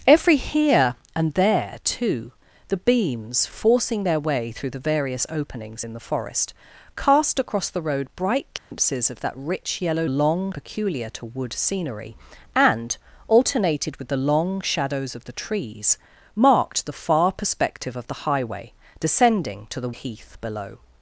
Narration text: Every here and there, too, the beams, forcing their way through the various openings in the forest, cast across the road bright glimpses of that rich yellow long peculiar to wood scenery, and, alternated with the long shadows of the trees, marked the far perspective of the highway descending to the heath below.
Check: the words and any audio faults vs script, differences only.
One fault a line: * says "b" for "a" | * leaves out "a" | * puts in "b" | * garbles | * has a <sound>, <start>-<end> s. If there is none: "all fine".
* has a dropout, 8.6-8.7 s